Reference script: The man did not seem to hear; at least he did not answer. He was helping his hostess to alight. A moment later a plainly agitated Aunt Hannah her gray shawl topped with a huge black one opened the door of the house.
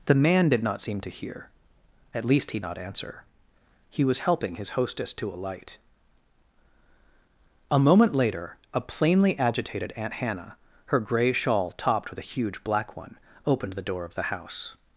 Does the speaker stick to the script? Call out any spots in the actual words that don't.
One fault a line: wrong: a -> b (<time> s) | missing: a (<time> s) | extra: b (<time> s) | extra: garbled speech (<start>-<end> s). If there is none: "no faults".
missing: did (2.6 s)